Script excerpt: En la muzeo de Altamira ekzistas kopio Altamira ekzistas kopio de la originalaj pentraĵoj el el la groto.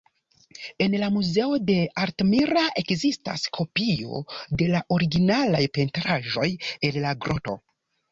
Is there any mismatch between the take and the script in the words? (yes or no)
yes